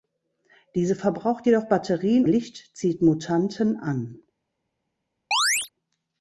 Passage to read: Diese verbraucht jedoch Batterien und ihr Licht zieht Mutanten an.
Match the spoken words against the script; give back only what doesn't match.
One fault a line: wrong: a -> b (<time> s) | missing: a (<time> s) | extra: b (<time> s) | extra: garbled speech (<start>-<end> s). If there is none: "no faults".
missing: und ihr (2.2 s)